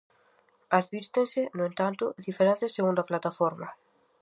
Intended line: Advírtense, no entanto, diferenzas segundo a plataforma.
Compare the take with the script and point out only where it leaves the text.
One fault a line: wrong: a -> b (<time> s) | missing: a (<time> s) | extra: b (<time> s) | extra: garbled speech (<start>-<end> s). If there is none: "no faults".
no faults